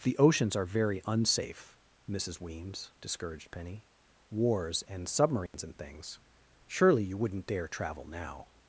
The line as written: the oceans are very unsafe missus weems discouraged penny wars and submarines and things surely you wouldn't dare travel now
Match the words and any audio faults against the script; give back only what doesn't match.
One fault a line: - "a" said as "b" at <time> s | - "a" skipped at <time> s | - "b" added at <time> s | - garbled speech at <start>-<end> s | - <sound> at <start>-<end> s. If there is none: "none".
- dropout at 5.5-5.5 s